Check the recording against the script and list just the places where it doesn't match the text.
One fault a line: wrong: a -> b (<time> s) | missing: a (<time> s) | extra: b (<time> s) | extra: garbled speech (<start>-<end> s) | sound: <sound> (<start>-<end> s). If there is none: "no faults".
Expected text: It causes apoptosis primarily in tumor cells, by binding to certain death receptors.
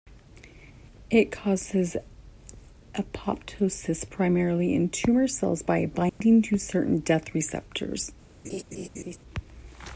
sound: dropout (6.1-6.2 s)
sound: laugh (8.4-9.2 s)